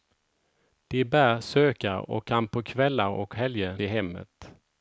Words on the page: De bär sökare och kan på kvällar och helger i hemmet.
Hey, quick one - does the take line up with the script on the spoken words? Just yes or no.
yes